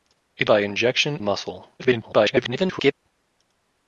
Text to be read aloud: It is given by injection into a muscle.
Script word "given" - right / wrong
wrong